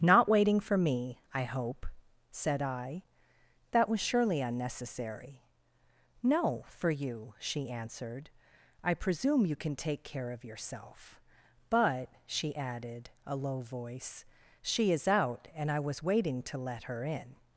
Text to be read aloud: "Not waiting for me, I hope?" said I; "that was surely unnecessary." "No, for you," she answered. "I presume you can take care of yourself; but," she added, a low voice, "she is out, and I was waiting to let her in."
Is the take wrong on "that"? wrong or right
right